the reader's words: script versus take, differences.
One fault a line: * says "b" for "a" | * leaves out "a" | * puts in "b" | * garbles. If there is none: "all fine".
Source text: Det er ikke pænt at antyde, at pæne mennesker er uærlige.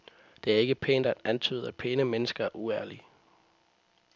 all fine